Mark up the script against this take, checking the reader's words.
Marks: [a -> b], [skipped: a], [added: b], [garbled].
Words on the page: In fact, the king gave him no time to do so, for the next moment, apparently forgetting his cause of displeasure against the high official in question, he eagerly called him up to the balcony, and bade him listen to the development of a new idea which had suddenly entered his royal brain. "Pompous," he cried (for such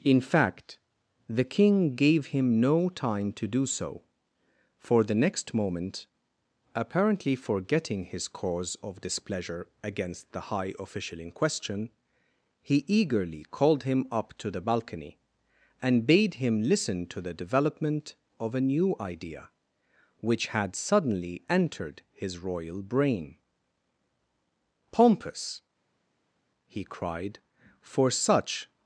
In fact, the king gave him no time to do so, for the next moment, apparently forgetting his cause of displeasure against the high official in question, he eagerly called him up to the balcony, and bade him listen to the development of a new idea which had suddenly entered his royal brain. "Pompous," he cried (for such